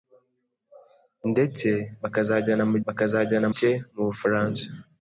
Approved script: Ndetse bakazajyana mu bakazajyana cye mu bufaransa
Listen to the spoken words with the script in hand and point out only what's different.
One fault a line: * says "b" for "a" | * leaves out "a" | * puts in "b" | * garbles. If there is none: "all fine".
all fine